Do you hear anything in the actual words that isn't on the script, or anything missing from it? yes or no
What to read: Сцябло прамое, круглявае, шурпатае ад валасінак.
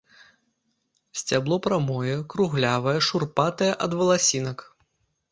no